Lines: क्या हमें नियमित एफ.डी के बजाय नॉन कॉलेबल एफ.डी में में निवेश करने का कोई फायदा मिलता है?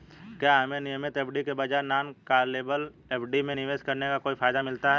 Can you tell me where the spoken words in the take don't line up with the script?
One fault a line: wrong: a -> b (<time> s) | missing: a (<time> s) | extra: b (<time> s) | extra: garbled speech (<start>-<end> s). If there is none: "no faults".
missing: में (3.5 s)